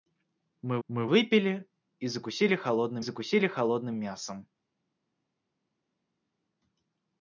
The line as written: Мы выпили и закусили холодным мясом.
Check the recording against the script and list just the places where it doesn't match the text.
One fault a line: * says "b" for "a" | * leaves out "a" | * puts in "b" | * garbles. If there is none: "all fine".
* puts in "мы"
* puts in "закусили холодным"